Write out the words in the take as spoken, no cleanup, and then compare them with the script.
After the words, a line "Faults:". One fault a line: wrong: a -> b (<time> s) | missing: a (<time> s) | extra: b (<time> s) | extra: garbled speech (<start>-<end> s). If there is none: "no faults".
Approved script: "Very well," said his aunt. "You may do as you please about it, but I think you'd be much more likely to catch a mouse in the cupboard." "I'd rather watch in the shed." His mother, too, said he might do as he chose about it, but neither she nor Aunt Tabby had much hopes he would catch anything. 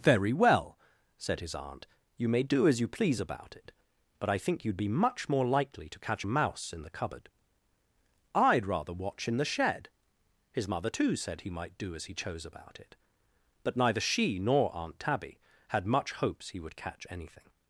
"Very well," said his aunt. "You may do as you please about it, but I think you'd be much more likely to catch a mouse in the cupboard." "I'd rather watch in the shed." His mother, too, said he might do as he chose about it, but neither she nor Aunt Tabby had much hopes he would catch anything.
Faults:
no faults